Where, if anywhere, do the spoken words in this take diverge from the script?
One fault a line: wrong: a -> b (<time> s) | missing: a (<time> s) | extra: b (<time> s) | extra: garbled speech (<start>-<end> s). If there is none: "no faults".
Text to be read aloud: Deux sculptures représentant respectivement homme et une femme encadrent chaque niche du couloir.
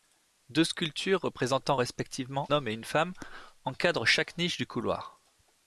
no faults